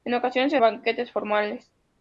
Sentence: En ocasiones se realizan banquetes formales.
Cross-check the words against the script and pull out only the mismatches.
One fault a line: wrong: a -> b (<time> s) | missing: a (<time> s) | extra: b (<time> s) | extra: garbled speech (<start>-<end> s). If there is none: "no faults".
missing: realizan (0.6 s)